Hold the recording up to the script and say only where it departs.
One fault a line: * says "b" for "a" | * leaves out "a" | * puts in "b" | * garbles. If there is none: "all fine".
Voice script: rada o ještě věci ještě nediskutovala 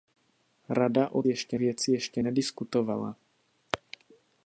all fine